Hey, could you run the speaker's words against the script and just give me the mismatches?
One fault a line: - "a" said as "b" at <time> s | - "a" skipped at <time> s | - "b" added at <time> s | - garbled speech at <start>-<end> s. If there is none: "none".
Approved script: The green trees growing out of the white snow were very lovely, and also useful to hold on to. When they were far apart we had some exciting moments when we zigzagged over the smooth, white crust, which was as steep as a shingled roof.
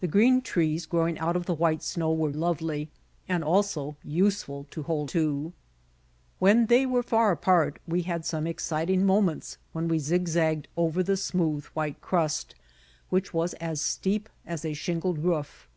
- "very" skipped at 2.3 s
- "on" skipped at 5.1 s